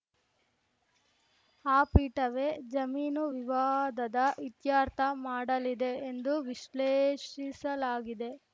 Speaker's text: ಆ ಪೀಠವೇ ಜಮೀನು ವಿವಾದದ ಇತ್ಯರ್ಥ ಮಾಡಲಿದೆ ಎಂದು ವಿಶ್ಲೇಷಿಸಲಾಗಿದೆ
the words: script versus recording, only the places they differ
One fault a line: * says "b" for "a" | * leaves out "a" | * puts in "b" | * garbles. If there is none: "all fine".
all fine